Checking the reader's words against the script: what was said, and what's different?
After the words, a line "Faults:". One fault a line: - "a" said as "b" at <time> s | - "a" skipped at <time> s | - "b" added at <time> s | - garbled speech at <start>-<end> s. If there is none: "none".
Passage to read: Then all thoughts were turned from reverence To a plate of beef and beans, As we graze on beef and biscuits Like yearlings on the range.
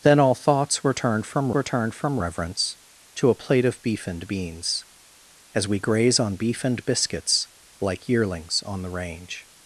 Then all thoughts were turned from were turned from reverence To a plate of beef and beans, As we graze on beef and biscuits Like yearlings on the range.
Faults:
- "were turned from" added at 1.5 s